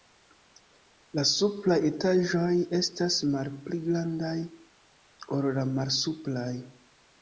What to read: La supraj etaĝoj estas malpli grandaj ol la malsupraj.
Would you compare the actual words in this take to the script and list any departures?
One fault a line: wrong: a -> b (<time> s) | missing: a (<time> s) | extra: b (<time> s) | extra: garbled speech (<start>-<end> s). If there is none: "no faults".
no faults